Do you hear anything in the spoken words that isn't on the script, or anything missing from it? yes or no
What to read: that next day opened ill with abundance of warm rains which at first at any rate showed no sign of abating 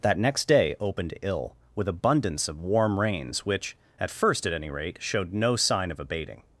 no